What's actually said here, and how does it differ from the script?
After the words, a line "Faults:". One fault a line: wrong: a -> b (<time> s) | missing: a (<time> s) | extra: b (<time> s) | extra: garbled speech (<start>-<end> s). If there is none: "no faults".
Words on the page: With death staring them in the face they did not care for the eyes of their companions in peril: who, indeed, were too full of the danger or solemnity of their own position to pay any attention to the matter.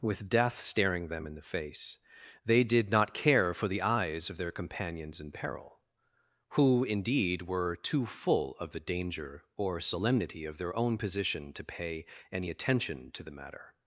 With death staring them in the face they did not care for the eyes of their companions in peril: who, indeed, were too full of the danger or solemnity of their own position to pay any attention to the matter.
Faults:
no faults